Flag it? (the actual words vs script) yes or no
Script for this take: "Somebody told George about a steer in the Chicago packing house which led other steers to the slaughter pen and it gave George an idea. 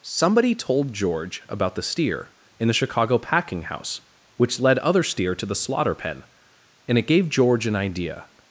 yes